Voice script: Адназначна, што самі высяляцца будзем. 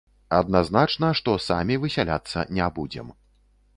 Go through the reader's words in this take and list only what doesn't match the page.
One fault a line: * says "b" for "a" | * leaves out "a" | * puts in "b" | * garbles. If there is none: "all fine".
* puts in "не"